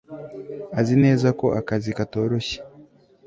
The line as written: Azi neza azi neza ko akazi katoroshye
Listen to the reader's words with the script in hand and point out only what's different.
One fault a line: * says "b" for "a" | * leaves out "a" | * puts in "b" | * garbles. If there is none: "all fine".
* leaves out "azi neza"